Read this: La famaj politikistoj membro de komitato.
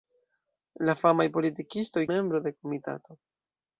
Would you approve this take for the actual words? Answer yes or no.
yes